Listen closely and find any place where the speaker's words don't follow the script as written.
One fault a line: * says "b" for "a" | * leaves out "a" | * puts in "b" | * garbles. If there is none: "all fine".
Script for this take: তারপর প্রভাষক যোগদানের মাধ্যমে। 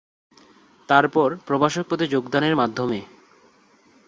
* puts in "পদে"